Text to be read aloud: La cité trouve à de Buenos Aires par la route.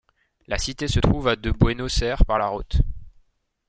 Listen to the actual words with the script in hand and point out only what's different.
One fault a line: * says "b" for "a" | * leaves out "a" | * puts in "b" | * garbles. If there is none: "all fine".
* puts in "se"